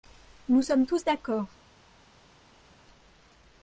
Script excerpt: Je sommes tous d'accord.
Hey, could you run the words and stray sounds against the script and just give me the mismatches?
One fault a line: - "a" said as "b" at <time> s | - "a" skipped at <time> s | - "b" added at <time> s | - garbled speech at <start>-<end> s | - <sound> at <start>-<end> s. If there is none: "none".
- "Je" said as "Nous" at 0.5 s